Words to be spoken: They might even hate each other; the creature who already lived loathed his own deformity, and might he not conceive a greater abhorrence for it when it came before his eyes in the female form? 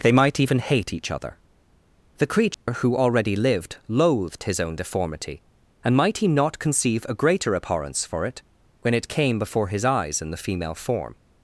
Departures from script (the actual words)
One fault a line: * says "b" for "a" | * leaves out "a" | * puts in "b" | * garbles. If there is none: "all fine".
all fine